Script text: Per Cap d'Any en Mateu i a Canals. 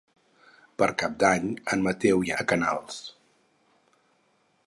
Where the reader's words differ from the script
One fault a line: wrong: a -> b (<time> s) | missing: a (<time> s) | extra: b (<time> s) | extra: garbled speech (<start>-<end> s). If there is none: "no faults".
no faults